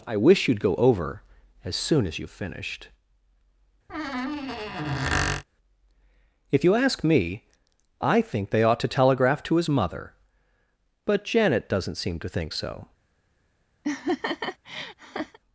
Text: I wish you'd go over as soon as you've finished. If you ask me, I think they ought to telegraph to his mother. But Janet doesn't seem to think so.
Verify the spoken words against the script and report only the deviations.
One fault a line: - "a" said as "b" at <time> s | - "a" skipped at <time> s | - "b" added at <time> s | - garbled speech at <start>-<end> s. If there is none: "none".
none